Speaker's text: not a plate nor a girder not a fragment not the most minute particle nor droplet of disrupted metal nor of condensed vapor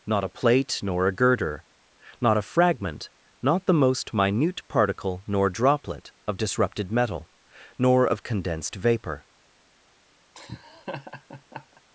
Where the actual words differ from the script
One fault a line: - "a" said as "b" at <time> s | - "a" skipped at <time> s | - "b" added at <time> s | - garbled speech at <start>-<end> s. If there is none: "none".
none